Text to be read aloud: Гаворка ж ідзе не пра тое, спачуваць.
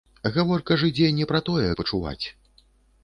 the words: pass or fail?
pass